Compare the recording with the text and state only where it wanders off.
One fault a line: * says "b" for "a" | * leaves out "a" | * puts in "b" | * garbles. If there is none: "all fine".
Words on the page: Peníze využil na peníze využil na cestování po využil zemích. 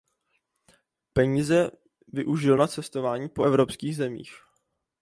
* leaves out "peníze využil na"
* says "evropských" for "využil"